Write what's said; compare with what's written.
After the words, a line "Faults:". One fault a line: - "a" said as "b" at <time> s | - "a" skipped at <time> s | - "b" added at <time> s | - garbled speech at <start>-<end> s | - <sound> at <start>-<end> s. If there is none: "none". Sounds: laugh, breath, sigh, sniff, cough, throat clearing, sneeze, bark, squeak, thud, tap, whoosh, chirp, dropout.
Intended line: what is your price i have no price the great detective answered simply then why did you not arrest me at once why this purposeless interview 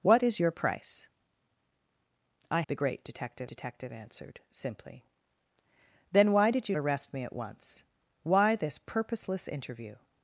what is your price i the great detective detective answered simply then why did you arrest me at once why this purposeless interview
Faults:
- "have no price" skipped at 2.6 s
- "detective" added at 3.5 s
- "not" skipped at 6.8 s